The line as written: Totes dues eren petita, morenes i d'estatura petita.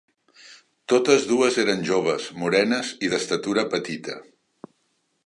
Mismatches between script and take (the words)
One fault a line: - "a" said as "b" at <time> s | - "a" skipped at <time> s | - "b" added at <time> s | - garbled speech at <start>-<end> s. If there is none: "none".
- "petita" said as "joves" at 1.9 s